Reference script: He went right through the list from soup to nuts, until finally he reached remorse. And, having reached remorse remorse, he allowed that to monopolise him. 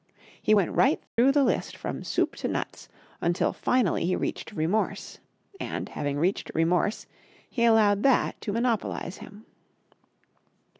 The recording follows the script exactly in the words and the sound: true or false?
false